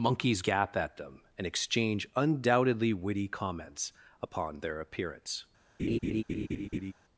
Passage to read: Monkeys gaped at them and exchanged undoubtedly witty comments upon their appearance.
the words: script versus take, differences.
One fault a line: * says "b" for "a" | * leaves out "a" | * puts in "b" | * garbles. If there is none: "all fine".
* says "gap" for "gaped"
* says "exchange" for "exchanged"